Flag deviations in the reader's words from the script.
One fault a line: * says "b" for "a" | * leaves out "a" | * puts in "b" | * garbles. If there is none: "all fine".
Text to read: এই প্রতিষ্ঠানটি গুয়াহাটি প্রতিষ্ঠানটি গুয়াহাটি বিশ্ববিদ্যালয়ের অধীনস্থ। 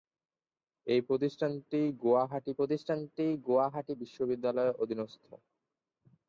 all fine